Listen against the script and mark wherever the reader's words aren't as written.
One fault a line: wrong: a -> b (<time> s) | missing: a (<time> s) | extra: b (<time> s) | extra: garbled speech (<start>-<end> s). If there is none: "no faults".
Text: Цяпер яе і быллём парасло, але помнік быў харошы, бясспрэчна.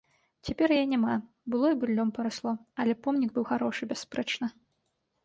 extra: няма было (0.9 s)